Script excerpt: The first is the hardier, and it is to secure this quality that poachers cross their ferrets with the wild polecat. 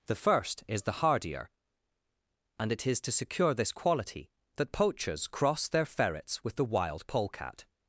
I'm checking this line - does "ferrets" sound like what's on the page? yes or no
yes